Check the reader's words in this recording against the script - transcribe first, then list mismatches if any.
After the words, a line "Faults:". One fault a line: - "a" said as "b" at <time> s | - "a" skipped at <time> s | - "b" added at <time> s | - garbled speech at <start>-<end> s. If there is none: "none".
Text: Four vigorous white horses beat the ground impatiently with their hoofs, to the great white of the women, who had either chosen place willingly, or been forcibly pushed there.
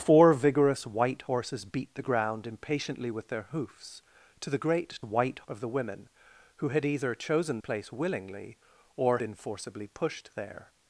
Four vigorous white horses beat the ground impatiently with their hoofs, to the great white of the women, who had either chosen place willingly, or been forcibly pushed there.
Faults:
none